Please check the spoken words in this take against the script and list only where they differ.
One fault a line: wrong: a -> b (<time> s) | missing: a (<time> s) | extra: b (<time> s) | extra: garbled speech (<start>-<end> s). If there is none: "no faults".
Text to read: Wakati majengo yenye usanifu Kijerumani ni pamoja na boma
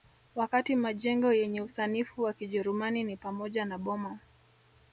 extra: wa (2.2 s)